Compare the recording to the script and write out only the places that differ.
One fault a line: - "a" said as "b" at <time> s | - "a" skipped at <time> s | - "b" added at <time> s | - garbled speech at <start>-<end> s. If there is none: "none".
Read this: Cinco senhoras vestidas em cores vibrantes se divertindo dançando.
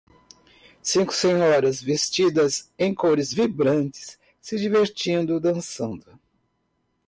none